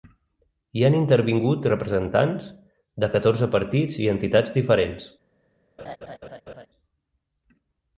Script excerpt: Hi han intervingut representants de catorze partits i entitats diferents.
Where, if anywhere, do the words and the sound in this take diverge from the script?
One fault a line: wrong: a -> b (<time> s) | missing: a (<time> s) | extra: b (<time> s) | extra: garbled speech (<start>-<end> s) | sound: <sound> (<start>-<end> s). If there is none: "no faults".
sound: laugh (5.8-6.7 s)